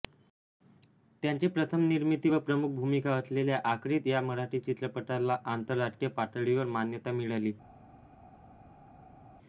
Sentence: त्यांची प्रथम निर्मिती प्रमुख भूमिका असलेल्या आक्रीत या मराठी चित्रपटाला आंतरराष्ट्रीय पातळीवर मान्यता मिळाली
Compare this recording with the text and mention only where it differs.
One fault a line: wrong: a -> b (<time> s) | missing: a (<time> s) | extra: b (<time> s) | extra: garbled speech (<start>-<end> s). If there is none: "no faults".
extra: व (2.3 s)